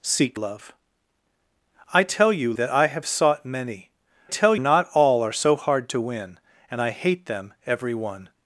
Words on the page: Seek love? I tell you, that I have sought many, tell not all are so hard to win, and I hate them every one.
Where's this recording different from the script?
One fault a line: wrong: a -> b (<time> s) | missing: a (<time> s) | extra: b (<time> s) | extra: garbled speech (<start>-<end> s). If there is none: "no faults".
no faults